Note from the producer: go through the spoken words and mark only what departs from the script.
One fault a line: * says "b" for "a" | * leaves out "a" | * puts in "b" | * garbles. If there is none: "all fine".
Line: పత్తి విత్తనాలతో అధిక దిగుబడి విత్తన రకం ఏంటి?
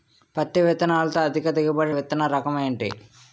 all fine